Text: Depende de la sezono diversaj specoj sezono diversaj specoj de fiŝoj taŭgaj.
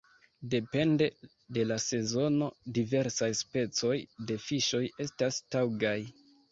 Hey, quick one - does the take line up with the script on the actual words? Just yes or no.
no